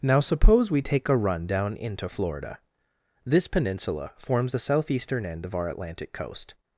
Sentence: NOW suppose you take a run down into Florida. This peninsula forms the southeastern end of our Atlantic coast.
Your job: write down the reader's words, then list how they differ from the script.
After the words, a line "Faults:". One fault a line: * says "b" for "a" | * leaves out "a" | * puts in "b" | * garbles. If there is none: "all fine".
NOW suppose we take a run down into Florida. This peninsula forms the southeastern end of our Atlantic coast.
Faults:
* says "we" for "you"